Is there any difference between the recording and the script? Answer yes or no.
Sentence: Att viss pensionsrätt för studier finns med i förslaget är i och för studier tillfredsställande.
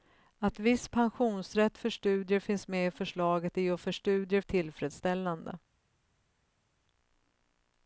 no